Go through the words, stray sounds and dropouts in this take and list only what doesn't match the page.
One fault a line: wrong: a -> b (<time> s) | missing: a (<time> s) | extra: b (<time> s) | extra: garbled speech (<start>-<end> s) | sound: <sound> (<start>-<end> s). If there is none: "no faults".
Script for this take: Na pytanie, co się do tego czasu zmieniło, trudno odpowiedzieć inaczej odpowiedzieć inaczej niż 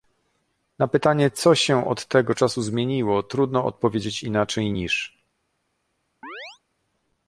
wrong: do -> od (1.9 s)
missing: odpowiedzieć inaczej (4.7 s)
sound: chirp (6.2-6.6 s)